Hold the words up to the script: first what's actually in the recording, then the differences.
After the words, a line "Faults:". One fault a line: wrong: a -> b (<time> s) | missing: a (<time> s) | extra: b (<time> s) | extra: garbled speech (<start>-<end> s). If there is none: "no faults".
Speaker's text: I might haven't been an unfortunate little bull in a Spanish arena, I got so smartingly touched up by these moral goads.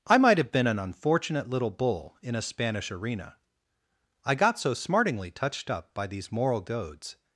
I might have been an unfortunate little bull in a Spanish arena, I got so smartingly touched up by these moral goads.
Faults:
wrong: haven't -> have (0.4 s)